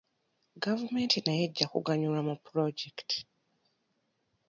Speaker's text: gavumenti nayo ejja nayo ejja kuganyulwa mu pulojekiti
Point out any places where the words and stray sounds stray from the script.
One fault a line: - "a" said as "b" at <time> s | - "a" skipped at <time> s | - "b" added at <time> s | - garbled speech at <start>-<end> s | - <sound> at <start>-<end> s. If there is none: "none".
- "nayo ejja" skipped at 1.6 s